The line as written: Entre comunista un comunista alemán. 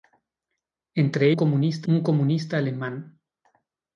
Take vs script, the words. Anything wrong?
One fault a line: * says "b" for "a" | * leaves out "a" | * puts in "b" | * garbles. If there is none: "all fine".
all fine